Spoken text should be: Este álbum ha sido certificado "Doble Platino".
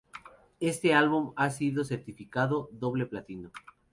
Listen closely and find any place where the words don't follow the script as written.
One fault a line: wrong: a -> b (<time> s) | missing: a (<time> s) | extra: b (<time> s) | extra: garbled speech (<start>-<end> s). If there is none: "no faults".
no faults